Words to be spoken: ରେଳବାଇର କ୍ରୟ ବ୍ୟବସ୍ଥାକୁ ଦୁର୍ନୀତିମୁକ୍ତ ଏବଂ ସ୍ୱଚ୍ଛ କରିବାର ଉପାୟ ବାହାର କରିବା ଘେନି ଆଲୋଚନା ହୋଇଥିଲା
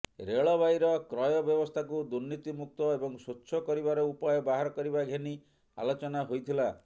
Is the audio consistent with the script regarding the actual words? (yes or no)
yes